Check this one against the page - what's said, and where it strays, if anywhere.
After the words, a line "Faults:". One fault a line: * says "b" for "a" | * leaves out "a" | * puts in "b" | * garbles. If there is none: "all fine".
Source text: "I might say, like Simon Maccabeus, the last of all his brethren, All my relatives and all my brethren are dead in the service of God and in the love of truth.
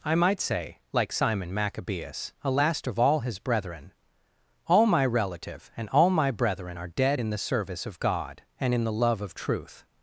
"I might say, like Simon Maccabeus, a last of all his brethren, All my relative and all my brethren are dead in the service of God and in the love of truth.
Faults:
* says "a" for "the"
* says "relative" for "relatives"